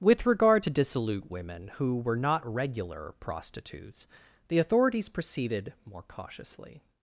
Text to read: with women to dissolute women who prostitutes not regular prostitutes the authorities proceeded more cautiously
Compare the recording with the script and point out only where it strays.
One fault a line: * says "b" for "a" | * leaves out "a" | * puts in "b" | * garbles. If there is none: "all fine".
* says "regard" for "women"
* says "were" for "prostitutes"